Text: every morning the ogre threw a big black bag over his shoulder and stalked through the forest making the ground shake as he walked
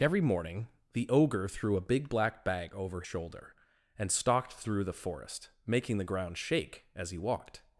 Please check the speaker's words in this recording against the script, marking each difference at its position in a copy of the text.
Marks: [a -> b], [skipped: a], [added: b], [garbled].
every morning the ogre threw a big black bag over [skipped: his] shoulder and stalked through the forest making the ground shake as he walked